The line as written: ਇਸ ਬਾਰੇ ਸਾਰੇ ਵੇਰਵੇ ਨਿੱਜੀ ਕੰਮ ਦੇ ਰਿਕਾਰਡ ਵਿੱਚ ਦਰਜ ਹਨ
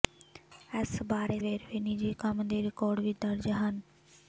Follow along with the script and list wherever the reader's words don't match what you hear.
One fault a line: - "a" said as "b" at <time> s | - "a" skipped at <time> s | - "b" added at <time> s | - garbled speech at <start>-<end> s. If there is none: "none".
- "ਸਾਰੇ" skipped at 1.4 s